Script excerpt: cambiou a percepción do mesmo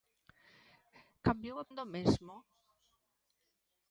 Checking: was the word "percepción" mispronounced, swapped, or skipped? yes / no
yes